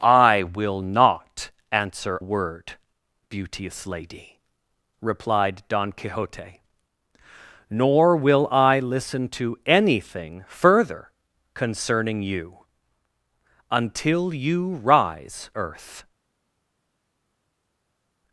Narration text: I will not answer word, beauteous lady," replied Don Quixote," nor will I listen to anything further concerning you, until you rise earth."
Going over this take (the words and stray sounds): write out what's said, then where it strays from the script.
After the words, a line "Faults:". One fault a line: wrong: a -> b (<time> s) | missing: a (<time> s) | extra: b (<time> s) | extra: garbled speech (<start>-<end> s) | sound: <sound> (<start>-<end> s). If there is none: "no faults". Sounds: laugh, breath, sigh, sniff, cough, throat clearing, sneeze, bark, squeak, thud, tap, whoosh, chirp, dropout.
I will not answer word, beauteous lady," replied Don Quixote," nor will I listen to anything further concerning you, until you rise earth."
Faults:
no faults